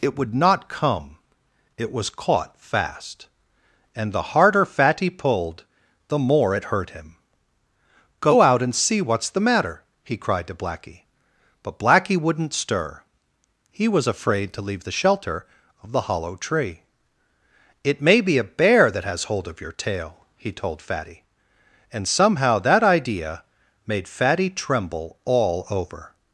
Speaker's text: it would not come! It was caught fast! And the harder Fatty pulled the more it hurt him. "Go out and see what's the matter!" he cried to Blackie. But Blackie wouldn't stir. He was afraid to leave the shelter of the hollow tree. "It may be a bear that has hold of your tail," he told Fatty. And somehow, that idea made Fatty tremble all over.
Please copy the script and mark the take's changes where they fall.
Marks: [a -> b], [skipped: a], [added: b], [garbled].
it would not come! It was caught fast! And the harder Fatty pulled the more it hurt him. "Go out and see what's the matter!" he cried to Blackie. But Blackie wouldn't stir. He was afraid to leave the shelter of the hollow tree. "It may be a bear that has hold of your tail," he told Fatty. And somehow, that idea made Fatty tremble all over.